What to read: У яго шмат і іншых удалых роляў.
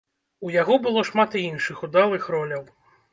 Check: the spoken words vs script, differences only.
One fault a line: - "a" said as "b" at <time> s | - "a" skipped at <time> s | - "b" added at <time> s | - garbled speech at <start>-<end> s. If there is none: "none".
- "было" added at 0.8 s